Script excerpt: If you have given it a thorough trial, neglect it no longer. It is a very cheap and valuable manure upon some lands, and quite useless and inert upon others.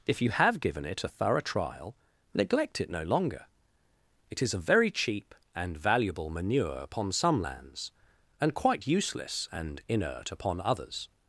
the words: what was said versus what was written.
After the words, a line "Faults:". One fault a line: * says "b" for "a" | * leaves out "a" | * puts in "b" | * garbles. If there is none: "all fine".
If you have given it a thorough trial, neglect it no longer. It is a very cheap and valuable manure upon some lands, and quite useless and inert upon others.
Faults:
all fine